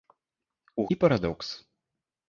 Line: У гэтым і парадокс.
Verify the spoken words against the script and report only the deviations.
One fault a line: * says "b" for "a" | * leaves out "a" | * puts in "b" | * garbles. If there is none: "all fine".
* leaves out "гэтым"